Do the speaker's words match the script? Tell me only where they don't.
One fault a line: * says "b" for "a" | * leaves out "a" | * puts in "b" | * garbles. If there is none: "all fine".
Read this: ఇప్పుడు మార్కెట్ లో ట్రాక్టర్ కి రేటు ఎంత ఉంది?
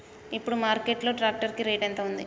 all fine